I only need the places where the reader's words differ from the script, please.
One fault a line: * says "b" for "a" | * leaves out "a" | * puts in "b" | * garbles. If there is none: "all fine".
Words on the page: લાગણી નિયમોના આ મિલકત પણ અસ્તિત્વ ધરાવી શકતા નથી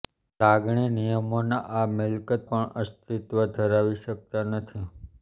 all fine